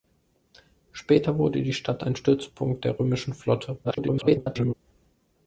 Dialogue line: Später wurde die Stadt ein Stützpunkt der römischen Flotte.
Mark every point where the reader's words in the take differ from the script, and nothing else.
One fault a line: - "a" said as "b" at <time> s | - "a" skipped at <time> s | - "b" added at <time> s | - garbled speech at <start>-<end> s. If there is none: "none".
- garbled speech at 3.8-4.7 s